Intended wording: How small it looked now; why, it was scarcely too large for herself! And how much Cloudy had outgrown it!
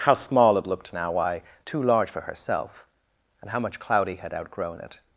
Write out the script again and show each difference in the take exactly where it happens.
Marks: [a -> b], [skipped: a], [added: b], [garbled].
How small it looked now; why, [skipped: it was scarcely] too large for herself! And how much Cloudy had outgrown it!